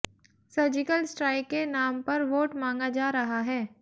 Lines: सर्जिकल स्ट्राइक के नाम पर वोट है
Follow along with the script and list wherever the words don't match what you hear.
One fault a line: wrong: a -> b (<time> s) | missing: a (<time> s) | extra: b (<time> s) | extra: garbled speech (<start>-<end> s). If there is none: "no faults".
extra: मांगा जा रहा (2.5 s)